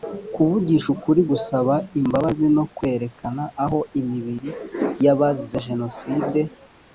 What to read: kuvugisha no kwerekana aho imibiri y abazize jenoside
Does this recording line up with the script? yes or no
no